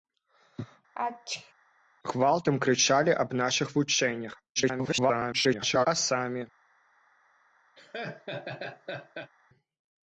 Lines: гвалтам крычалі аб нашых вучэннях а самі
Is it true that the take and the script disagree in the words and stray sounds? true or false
true